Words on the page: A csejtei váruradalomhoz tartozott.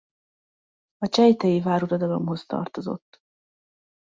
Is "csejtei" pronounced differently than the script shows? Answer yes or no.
no